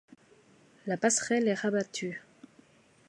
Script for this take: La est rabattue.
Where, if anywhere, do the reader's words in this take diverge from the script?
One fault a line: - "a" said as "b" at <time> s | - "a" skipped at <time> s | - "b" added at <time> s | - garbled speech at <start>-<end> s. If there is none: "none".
- "passerelle" added at 0.9 s